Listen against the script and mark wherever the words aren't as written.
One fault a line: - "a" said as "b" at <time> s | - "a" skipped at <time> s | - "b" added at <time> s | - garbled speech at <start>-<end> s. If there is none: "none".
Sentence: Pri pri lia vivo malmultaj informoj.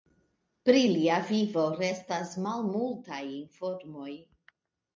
- "pri" skipped at 0.8 s
- "restas" added at 1.8 s